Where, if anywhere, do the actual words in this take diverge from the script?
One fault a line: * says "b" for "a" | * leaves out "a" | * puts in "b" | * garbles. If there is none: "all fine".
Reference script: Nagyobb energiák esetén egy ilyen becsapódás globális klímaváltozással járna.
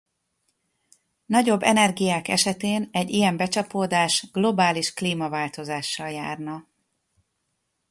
all fine